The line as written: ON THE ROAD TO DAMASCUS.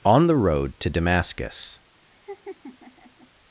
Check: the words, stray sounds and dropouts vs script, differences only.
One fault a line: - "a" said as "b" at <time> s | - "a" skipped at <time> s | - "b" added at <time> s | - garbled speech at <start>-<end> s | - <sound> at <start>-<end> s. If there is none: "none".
- laugh at 2.1-3.3 s